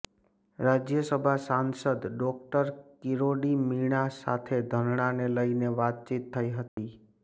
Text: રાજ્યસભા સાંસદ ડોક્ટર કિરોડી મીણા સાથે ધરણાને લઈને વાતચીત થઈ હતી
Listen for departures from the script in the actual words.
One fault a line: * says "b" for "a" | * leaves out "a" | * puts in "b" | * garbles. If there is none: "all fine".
all fine